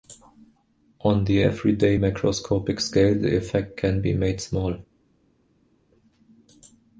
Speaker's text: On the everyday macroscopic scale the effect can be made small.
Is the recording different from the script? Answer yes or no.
no